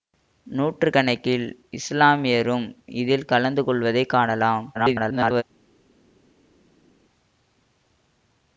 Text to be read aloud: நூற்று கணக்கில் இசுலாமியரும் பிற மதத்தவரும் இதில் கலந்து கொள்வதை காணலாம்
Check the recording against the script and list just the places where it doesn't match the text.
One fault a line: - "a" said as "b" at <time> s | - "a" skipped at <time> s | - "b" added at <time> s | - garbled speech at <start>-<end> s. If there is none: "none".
- "பிற மதத்தவரும்" skipped at 2.6 s
- garbled speech at 4.7-5.4 s